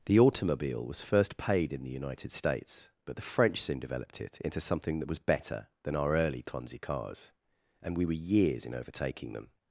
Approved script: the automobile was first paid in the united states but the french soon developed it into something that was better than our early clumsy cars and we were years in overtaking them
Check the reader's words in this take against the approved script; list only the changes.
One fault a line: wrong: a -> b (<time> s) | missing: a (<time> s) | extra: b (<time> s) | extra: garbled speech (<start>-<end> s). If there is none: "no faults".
no faults